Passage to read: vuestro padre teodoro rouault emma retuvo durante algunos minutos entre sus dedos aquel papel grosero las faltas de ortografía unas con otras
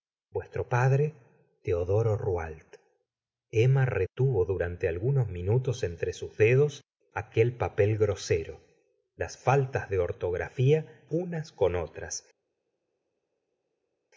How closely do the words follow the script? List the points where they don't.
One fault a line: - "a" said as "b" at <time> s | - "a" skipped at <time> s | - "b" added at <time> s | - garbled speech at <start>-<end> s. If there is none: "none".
none